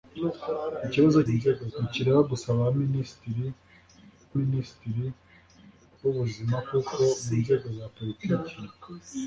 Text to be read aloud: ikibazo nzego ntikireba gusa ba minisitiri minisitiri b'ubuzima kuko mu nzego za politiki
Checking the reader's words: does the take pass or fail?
pass